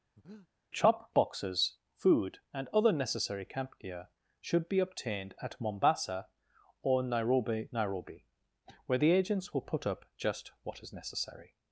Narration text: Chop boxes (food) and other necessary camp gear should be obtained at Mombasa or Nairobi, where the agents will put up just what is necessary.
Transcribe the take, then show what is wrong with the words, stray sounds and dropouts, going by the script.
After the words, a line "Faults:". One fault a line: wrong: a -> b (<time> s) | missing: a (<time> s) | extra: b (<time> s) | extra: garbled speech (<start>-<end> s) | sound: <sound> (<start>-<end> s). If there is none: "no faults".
Chop boxes (food) and other necessary camp gear should be obtained at Mombasa or Nairobi Nairobi, where the agents will put up just what is necessary.
Faults:
sound: breath (0.2-0.5 s)
extra: Nairobi (7.7 s)